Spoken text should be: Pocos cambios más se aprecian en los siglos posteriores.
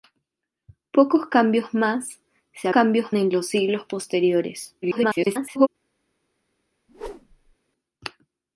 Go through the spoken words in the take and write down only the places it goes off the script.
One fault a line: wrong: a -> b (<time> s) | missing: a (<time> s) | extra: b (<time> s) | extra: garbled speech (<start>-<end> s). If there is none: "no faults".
wrong: aprecian -> cambios (2.7 s)
extra: garbled speech (4.8-5.7 s)